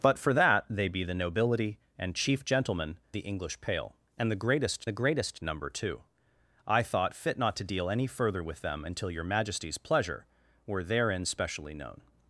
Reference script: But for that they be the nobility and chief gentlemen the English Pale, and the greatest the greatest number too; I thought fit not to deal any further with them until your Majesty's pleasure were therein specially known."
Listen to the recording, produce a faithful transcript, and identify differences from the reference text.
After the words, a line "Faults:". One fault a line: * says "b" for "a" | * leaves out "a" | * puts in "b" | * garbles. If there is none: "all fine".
But for that they be the nobility and chief gentlemen the English Pale, and the greatest the greatest number too; I thought fit not to deal any further with them until your Majesty's pleasure were therein specially known."
Faults:
all fine